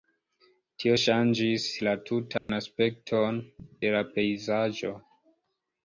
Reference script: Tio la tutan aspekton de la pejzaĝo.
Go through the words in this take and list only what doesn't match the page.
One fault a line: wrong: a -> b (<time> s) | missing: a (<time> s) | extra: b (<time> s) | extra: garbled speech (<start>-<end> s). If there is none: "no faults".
extra: ŝanĝis (1.0 s)